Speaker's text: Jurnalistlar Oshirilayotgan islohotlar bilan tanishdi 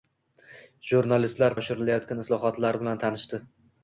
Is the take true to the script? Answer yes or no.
yes